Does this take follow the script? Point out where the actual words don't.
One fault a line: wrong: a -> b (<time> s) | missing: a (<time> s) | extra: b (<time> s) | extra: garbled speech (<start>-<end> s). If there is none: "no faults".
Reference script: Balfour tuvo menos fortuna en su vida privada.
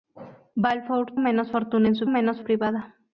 missing: tuvo (1.1 s)
wrong: vida -> menos (2.1 s)